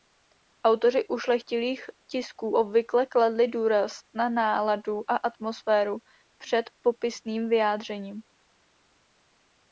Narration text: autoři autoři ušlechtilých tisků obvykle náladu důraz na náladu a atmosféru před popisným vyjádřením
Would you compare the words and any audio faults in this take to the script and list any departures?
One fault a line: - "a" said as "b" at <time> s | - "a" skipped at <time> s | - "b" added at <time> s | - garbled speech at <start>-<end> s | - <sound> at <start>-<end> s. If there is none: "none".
- "autoři" skipped at 1.1 s
- "náladu" said as "kladli" at 3.1 s